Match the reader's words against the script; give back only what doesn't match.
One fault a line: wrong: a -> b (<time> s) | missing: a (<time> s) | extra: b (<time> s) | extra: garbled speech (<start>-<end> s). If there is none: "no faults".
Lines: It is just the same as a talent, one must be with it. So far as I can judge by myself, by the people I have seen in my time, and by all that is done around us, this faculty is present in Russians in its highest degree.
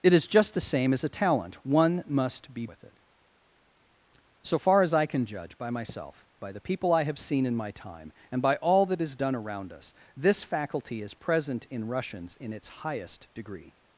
no faults